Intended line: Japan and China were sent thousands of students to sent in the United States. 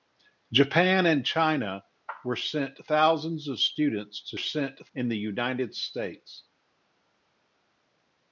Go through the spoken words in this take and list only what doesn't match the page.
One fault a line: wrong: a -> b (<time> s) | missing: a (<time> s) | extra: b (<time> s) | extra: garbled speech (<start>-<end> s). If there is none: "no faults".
no faults